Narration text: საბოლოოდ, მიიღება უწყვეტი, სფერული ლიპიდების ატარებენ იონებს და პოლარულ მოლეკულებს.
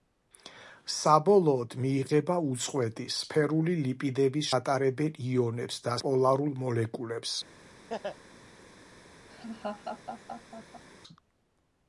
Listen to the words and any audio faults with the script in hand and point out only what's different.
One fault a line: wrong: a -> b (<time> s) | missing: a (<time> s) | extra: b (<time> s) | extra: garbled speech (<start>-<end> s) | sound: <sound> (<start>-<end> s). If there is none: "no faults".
sound: laugh (7.9-8.2 s)
sound: laugh (9.3-10.8 s)